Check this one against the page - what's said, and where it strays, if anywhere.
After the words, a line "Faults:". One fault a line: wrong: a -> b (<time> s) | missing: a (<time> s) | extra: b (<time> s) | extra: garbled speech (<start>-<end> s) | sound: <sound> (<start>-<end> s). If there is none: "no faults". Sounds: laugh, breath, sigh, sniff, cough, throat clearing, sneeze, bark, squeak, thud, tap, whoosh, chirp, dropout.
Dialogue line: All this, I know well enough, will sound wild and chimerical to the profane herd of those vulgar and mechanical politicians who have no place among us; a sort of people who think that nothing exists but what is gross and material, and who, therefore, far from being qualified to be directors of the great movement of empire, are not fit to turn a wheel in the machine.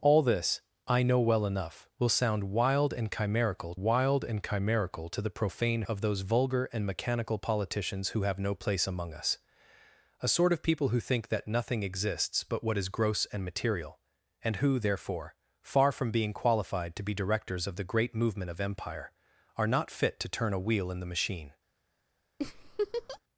All this, I know well enough, will sound wild and chimerical wild and chimerical to the profane of those vulgar and mechanical politicians who have no place among us; a sort of people who think that nothing exists but what is gross and material, and who, therefore, far from being qualified to be directors of the great movement of empire, are not fit to turn a wheel in the machine.
Faults:
extra: wild and chimerical (3.7 s)
missing: herd (5.8 s)
sound: laugh (22.4-23.2 s)